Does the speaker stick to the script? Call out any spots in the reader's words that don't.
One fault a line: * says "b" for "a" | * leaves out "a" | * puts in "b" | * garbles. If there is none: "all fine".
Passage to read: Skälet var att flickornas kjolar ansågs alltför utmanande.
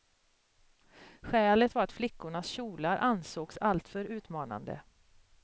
all fine